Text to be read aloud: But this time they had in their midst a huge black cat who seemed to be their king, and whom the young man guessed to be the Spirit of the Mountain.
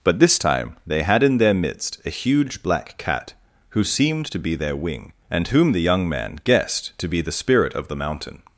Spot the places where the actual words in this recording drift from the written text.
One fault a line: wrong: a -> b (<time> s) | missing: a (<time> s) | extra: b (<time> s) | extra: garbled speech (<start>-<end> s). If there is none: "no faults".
wrong: king -> wing (4.7 s)